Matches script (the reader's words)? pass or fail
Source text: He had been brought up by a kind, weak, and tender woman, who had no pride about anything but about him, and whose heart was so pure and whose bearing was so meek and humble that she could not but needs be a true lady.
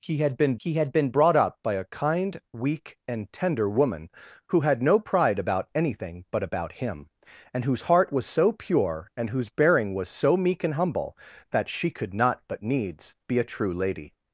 fail